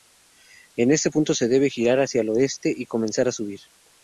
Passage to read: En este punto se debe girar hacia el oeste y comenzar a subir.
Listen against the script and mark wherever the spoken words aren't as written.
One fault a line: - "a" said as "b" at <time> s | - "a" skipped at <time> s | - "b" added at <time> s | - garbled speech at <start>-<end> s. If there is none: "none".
none